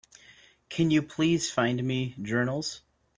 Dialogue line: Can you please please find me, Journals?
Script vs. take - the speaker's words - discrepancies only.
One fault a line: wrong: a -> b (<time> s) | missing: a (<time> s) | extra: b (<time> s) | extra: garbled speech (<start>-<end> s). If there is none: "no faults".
missing: please (1.5 s)